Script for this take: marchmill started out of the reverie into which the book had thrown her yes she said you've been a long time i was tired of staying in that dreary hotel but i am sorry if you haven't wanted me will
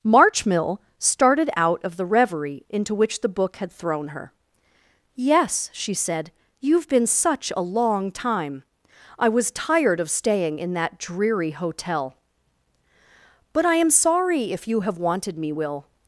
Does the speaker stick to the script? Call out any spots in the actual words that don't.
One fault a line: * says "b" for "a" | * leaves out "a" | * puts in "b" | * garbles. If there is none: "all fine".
* puts in "such"
* says "have" for "haven't"